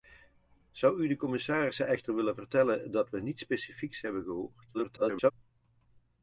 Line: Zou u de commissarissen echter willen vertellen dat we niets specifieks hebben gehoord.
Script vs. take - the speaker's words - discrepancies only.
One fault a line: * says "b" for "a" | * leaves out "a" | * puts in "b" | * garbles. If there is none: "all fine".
* garbles